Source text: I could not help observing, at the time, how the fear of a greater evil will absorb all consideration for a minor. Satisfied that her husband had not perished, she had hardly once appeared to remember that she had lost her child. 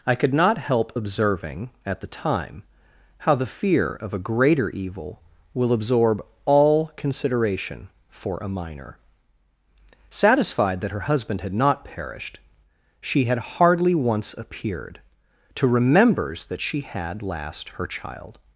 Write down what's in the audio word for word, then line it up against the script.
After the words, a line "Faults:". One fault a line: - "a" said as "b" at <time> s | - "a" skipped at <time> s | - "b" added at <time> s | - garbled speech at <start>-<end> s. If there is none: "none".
I could not help observing, at the time, how the fear of a greater evil will absorb all consideration for a minor. Satisfied that her husband had not perished, she had hardly once appeared to remembers that she had last her child.
Faults:
- "remember" said as "remembers" at 15.7 s
- "lost" said as "last" at 17.2 s